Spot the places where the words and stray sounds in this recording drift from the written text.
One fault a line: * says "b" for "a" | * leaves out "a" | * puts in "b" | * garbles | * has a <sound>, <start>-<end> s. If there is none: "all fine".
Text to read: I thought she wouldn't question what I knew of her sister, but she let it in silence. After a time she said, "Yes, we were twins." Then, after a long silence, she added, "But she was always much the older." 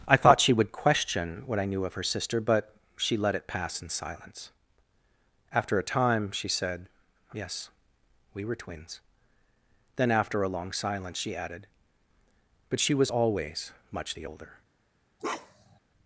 * says "would" for "wouldn't"
* puts in "pass"
* has a bark, 15.2-15.8 s